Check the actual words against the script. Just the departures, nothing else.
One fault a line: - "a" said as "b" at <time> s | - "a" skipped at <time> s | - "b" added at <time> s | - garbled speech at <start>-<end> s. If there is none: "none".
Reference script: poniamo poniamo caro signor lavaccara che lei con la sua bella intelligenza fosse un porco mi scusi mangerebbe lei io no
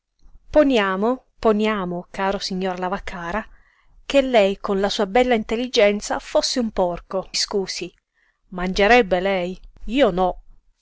- "mi" skipped at 7.3 s